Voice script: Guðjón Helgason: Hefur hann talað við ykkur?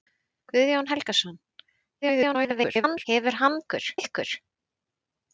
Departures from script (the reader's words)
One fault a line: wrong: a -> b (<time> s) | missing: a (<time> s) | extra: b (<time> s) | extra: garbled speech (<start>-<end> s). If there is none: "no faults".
extra: garbled speech (2.0-3.0 s)
wrong: talað -> ykkur (3.6 s)